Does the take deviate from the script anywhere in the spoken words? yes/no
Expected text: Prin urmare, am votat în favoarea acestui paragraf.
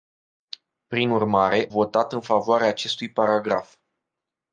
yes